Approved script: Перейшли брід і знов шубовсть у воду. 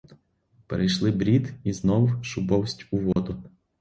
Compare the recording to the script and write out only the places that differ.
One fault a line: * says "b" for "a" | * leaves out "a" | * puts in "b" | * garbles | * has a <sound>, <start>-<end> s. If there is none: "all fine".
* has a dropout, 3.1-3.2 s